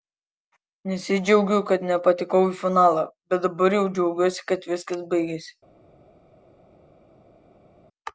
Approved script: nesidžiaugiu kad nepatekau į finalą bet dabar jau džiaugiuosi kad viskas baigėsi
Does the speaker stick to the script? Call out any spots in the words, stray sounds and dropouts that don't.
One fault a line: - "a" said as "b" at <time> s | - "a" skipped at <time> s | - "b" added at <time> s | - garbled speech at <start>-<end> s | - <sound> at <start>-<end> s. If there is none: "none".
none